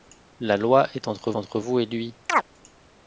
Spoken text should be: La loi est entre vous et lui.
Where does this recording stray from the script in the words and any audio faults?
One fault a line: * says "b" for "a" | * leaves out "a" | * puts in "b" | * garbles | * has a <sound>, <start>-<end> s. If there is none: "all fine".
* puts in "entre"
* has a chirp, 2.3-2.4 s